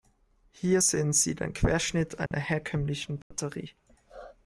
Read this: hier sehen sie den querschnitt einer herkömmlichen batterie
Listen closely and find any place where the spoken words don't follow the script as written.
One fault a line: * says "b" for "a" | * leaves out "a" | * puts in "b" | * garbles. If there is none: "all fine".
all fine